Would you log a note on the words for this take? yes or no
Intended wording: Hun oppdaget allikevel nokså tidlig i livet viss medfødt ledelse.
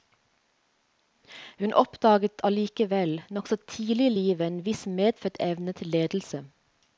yes